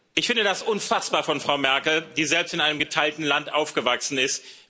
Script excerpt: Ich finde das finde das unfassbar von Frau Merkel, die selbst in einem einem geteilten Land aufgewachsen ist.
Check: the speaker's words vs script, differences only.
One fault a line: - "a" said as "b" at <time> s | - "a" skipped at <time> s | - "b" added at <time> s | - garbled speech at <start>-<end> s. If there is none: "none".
- "finde das" skipped at 0.6 s
- "einem" skipped at 2.8 s